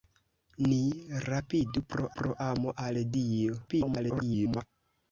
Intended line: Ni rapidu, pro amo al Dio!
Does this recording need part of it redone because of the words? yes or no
yes